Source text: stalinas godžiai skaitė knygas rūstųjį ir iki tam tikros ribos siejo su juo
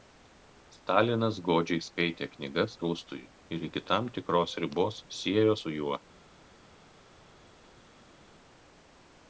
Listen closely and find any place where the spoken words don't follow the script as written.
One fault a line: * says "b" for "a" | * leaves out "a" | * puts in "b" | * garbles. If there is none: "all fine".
all fine